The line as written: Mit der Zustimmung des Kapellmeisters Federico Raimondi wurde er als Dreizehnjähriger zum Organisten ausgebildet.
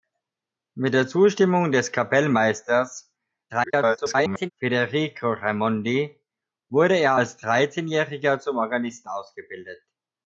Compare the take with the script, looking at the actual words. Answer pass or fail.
fail